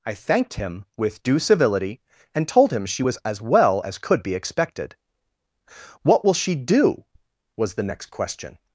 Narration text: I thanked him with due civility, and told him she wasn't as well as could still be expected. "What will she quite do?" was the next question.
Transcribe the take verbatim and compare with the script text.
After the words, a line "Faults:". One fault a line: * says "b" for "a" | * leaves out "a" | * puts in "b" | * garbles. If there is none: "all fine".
I thanked him with due civility, and told him she was as well as could be expected. "What will she do?" was the next question.
Faults:
* says "was" for "wasn't"
* leaves out "still"
* leaves out "quite"